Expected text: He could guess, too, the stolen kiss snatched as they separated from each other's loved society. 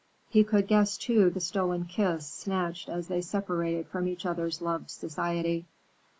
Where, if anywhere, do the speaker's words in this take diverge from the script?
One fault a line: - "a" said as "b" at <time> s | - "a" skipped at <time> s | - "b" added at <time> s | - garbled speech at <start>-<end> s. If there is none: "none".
none